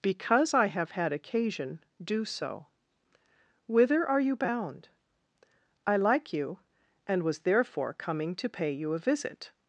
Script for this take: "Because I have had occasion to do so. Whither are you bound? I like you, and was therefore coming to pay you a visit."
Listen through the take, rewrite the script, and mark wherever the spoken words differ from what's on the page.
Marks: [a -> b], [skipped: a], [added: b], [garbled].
"Because I have had occasion [skipped: to] do so. Whither are you bound? I like you, and was therefore coming to pay you a visit."